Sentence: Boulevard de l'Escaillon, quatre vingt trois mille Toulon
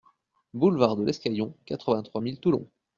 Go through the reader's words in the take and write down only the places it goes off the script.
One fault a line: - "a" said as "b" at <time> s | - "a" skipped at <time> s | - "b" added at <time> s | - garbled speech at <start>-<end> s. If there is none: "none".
none